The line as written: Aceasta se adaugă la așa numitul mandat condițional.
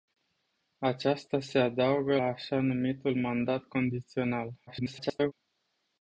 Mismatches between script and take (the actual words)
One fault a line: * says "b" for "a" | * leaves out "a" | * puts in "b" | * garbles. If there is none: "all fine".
* leaves out "la"
* garbles